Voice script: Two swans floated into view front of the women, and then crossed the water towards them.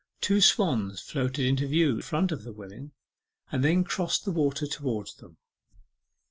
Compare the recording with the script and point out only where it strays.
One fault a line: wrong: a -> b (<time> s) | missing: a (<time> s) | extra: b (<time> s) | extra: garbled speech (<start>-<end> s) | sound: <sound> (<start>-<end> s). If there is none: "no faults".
no faults